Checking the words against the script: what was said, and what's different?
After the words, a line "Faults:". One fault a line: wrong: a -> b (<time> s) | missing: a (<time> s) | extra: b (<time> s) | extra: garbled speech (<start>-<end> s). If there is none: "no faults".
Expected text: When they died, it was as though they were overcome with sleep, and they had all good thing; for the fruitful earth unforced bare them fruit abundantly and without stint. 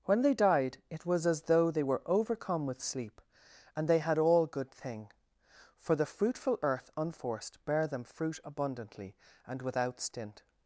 When they died, it was as though they were overcome with sleep, and they had all good thing; for the fruitful earth unforced bare them fruit abundantly and without stint.
Faults:
no faults